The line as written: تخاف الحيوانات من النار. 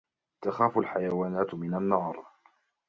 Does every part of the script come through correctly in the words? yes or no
yes